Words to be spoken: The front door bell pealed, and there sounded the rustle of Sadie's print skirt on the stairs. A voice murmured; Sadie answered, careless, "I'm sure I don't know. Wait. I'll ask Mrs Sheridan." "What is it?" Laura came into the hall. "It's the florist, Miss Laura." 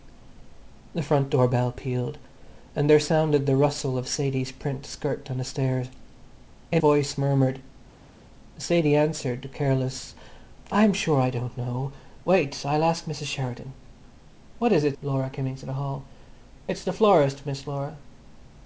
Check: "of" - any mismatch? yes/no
no